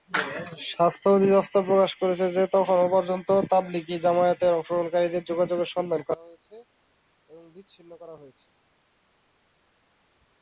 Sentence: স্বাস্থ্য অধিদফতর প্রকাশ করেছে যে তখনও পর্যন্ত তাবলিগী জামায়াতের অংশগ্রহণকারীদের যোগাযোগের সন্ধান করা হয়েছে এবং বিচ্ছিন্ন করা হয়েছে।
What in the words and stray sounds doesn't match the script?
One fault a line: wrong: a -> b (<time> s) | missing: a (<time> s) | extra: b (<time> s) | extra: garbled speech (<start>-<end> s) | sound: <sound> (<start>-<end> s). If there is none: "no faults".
no faults